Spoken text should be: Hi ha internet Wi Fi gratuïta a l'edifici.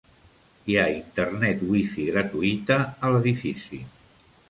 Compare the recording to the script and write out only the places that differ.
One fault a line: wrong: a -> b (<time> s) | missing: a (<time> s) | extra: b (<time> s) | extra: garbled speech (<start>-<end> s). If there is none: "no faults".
no faults